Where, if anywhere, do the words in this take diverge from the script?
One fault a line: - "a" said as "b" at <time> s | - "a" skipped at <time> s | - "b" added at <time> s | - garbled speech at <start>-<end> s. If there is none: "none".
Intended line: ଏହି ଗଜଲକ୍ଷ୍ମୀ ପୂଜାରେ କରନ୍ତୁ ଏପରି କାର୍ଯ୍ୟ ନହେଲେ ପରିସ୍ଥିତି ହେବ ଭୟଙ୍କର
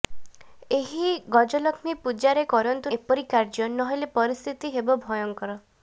none